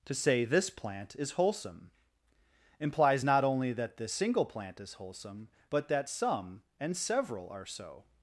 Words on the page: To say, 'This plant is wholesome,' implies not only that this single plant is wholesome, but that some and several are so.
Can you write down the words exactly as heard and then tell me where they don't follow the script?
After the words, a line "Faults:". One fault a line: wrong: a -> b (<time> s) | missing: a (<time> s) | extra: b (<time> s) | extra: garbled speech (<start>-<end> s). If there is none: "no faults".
To say, 'This plant is wholesome,' implies not only that this single plant is wholesome, but that some and several are so.
Faults:
no faults